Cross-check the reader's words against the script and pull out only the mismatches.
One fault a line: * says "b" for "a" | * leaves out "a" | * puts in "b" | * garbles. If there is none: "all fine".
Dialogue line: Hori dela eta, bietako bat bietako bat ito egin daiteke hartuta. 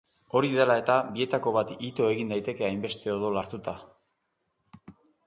* leaves out "bietako bat"
* puts in "hainbeste odol"